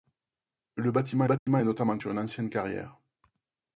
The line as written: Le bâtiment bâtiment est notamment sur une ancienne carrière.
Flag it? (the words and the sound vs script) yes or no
yes